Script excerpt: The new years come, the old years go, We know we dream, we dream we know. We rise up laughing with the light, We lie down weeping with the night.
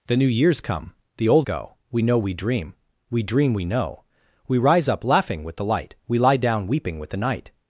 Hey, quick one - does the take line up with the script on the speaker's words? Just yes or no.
no